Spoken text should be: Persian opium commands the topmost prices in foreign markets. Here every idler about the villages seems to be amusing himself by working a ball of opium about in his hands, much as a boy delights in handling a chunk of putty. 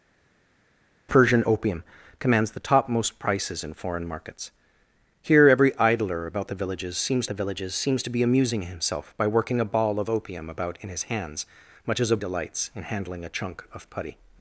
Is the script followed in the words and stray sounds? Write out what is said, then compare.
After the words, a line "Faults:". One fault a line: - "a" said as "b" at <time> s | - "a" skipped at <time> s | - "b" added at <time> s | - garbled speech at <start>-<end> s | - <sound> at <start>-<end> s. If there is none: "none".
Persian opium commands the topmost prices in foreign markets. Here every idler about the villages seems the villages seems to be amusing himself by working a ball of opium about in his hands, much as a delights in handling a chunk of putty.
Faults:
- "the villages seems" added at 7.3 s
- "boy" skipped at 12.2 s